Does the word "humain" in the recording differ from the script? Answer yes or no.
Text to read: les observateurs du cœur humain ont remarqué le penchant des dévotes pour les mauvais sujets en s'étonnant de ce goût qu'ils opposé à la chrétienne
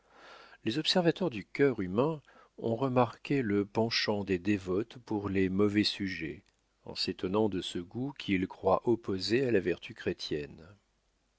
no